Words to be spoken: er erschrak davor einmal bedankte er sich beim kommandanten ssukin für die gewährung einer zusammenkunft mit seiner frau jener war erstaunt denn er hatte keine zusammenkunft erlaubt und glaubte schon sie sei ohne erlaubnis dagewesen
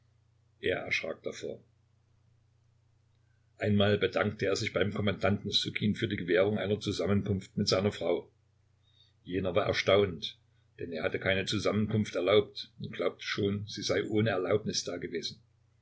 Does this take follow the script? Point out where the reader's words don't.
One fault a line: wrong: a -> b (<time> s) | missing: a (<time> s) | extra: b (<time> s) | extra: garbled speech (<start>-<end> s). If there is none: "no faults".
no faults